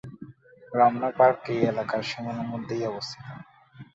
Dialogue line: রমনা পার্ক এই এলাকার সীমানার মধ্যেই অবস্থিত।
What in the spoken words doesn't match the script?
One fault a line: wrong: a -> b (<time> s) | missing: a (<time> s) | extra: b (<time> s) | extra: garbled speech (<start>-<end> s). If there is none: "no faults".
no faults